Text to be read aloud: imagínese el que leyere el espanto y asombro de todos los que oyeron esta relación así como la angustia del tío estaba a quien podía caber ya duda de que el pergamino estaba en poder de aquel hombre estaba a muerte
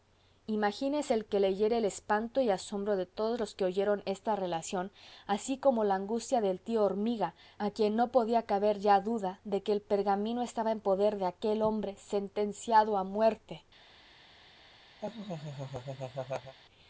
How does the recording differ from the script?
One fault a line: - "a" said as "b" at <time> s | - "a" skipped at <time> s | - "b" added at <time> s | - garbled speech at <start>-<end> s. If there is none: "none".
- "estaba" said as "hormiga" at 6.8 s
- "no" added at 8.0 s
- "estaba" said as "sentenciado" at 12.0 s